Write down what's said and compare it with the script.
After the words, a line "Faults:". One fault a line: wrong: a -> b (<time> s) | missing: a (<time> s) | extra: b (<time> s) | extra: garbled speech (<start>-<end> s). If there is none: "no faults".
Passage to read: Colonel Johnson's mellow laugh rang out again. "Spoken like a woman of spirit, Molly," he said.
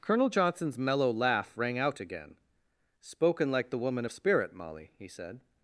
Colonel Johnson's mellow laugh rang out again. "Spoken like the woman of spirit, Molly," he said.
Faults:
wrong: a -> the (3.7 s)